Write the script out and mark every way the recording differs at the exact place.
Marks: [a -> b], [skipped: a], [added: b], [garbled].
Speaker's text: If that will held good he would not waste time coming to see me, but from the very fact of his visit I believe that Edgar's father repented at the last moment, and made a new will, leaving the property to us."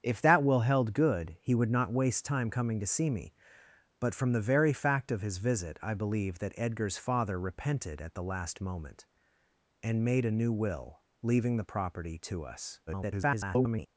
If that will held good he would not waste time coming to see me, but from the very fact of his visit I believe that Edgar's father repented at the last moment, and made a new will, leaving the property to us." [garbled]